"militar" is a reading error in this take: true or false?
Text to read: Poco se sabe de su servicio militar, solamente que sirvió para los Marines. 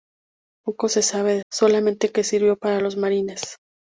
true